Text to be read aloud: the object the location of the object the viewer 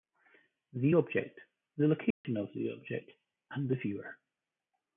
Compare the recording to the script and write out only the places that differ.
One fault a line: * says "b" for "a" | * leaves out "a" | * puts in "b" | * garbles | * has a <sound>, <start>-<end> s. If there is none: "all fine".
* has a dropout, 2.1-2.2 s
* puts in "and"